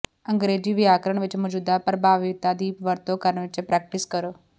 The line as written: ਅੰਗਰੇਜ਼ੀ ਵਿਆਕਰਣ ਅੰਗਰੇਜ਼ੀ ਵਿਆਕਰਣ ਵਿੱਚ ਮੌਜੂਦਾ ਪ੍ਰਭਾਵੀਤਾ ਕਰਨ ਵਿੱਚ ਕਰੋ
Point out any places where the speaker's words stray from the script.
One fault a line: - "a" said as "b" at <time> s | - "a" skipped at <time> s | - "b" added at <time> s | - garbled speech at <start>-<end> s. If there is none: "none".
- "ਅੰਗਰੇਜ਼ੀ ਵਿਆਕਰਣ" skipped at 1.2 s
- "ਦੀ ਵਰਤੋਂ" added at 2.5 s
- "ਪ੍ਰੈਕਟਿਸ" added at 3.6 s